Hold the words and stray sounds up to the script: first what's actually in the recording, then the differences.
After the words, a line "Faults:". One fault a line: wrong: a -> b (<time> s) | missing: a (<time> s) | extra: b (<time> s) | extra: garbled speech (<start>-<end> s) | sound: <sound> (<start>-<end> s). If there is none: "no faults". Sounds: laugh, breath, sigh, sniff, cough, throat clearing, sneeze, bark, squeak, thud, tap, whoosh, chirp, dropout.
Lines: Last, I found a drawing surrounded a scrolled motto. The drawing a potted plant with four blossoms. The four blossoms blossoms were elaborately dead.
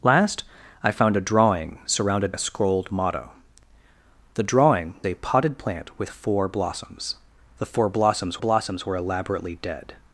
Last, I found a drawing surrounded a scrolled motto. The drawing a potted plant with four blossoms. The four blossoms blossoms were elaborately dead.
Faults:
no faults